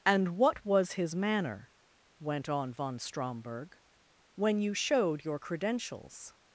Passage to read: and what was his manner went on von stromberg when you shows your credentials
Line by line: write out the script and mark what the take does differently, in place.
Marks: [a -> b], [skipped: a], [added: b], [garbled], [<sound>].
and what was his manner went on von stromberg when you [shows -> showed] your credentials